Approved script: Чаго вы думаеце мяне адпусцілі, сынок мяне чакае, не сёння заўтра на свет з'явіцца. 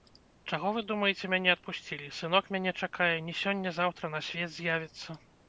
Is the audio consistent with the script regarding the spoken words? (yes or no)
yes